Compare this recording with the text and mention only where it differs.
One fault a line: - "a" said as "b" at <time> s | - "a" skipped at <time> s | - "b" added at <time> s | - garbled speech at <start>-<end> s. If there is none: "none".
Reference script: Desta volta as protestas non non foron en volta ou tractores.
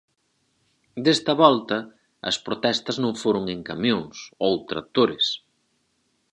- "non" skipped at 3.1 s
- "volta" said as "camións" at 3.7 s